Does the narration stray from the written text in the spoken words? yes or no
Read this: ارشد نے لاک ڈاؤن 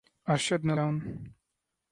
yes